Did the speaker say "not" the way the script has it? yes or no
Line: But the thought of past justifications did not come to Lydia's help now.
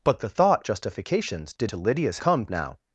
no